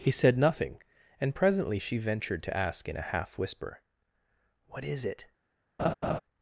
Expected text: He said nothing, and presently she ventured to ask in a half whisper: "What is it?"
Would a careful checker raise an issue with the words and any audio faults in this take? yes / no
yes